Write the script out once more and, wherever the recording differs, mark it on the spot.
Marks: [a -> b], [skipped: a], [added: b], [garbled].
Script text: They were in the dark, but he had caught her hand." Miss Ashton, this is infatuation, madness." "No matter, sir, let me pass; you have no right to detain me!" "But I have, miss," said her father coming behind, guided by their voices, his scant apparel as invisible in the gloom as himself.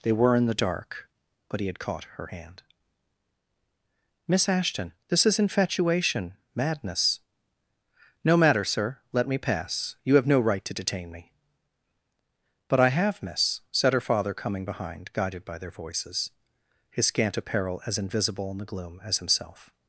They were in the dark, but he had caught her hand." Miss Ashton, this is infatuation, madness." "No matter, sir, let me pass; you have no right to detain me!" "But I have, miss," said her father coming behind, guided by their voices, his scant apparel as invisible in the gloom as himself.